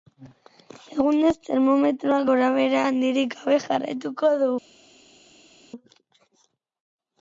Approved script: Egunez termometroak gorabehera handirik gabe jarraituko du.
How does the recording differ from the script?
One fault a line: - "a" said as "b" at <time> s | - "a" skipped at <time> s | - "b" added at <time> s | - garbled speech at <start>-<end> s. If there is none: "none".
none